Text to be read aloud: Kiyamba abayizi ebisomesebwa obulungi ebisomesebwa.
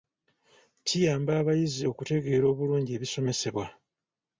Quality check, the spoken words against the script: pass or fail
fail